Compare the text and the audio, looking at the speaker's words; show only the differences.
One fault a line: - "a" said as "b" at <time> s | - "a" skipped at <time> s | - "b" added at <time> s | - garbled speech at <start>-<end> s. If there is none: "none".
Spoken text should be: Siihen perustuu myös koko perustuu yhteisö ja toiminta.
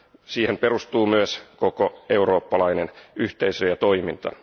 - "perustuu" said as "eurooppalainen" at 2.1 s